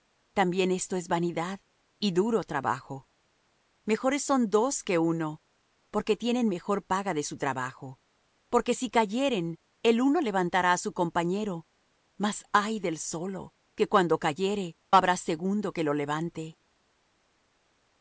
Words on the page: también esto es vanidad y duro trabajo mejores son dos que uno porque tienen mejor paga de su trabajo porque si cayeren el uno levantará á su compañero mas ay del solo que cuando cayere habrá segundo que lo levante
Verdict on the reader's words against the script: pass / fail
pass